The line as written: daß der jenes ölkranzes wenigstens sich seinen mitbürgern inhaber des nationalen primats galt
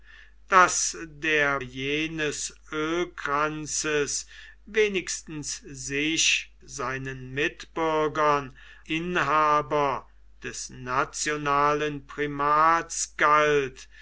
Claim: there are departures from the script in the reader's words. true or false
false